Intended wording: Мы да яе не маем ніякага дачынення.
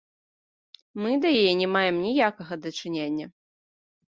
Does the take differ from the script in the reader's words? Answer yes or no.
no